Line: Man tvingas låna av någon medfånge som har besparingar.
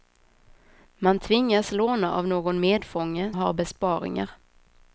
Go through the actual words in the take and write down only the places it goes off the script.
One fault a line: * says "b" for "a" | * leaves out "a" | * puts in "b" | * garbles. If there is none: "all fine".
* leaves out "som"